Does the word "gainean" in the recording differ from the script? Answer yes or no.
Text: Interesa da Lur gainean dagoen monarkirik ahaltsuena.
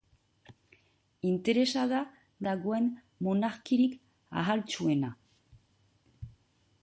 yes